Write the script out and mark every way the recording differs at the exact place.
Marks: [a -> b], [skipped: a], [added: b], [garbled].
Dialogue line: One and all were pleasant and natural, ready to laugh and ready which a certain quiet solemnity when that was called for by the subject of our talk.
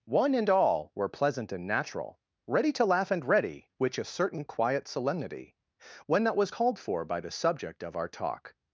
One and all were pleasant and natural, ready to laugh and ready which a certain quiet solemnity when that was called for by the subject of our talk.